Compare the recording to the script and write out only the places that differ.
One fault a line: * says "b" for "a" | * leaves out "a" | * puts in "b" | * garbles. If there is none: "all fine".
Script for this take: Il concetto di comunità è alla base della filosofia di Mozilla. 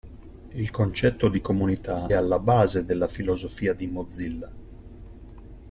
* leaves out "è"